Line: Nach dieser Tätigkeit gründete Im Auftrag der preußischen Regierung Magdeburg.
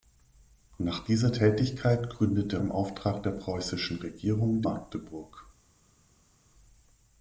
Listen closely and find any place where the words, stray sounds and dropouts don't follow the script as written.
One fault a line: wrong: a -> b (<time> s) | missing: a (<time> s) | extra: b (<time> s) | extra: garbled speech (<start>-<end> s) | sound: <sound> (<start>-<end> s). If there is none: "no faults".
no faults